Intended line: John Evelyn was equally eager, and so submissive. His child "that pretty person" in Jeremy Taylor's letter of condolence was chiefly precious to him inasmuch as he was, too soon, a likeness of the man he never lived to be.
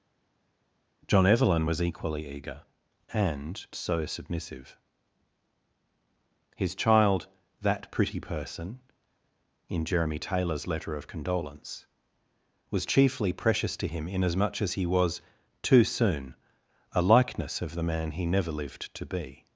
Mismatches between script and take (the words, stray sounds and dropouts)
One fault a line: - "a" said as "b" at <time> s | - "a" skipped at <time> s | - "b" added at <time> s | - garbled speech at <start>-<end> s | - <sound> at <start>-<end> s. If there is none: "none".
none